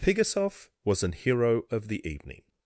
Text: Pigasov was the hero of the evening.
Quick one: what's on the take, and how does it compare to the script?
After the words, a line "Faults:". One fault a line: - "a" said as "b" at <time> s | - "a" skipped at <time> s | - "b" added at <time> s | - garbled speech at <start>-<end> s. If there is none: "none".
Pigasov was an hero of the evening.
Faults:
- "the" said as "an" at 1.0 s